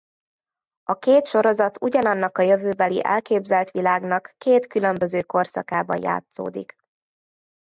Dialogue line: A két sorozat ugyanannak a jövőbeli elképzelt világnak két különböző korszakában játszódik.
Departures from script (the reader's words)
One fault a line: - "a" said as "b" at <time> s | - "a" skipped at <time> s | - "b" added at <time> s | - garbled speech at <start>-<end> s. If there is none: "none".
none